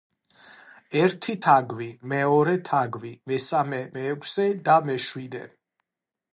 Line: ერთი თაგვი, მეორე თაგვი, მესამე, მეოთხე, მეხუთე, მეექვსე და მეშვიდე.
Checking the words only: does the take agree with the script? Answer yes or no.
no